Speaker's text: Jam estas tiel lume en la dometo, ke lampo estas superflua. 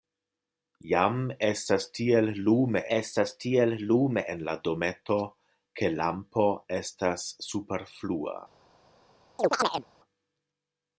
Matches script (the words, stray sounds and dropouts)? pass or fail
fail